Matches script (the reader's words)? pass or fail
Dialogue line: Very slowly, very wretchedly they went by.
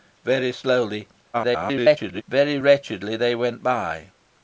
fail